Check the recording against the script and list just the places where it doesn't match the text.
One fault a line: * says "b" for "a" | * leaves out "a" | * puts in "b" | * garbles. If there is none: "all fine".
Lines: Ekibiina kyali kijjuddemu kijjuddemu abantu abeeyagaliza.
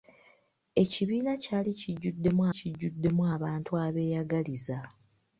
all fine